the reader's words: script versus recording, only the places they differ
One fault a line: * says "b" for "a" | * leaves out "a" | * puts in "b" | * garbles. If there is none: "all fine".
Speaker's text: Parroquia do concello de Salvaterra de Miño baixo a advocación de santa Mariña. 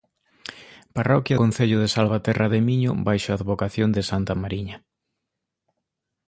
* leaves out "do"